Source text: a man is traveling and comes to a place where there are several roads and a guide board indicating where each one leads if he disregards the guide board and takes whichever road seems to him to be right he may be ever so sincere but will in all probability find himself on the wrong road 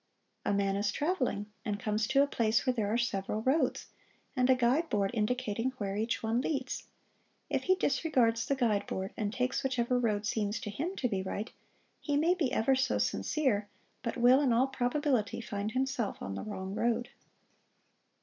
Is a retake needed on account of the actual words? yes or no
no